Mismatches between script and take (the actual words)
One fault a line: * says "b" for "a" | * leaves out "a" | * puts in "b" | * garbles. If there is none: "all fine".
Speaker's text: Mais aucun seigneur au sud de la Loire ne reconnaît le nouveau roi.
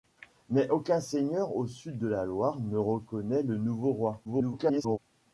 * garbles